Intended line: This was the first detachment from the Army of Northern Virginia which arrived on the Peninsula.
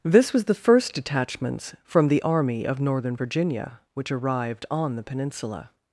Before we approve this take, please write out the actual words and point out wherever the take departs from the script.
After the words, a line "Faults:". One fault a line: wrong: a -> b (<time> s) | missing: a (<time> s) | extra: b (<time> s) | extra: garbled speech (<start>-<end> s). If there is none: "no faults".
This was the first detachments from the Army of Northern Virginia which arrived on the Peninsula.
Faults:
wrong: detachment -> detachments (0.9 s)